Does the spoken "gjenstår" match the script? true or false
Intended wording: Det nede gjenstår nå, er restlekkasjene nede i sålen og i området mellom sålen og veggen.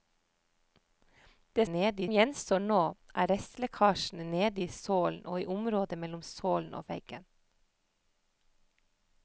true